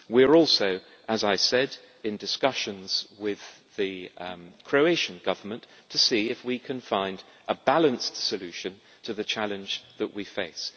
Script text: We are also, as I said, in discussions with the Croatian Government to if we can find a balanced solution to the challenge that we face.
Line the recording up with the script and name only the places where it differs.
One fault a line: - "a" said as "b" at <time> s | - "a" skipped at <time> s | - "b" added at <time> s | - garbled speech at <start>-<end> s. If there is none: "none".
- "see" added at 6.0 s